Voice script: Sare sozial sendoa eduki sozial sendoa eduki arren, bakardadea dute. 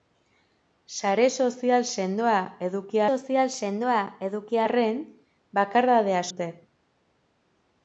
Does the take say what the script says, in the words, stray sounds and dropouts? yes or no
yes